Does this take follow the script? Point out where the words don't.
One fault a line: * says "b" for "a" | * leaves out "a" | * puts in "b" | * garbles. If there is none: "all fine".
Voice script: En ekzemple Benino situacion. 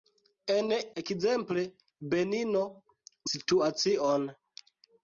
all fine